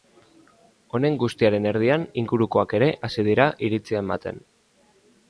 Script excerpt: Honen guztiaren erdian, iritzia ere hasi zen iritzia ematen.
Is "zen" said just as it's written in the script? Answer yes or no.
no